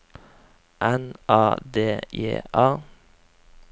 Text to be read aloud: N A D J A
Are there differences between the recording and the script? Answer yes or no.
no